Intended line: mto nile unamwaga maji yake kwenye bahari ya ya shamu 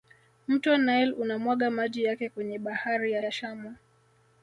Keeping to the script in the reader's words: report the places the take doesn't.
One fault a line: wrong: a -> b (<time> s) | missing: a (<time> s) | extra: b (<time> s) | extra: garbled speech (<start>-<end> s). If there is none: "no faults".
no faults